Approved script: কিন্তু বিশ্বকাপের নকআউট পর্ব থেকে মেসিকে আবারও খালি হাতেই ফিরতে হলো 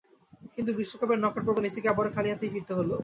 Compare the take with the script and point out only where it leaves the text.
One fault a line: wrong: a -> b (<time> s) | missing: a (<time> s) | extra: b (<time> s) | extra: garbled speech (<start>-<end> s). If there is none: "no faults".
missing: থেকে (1.6 s)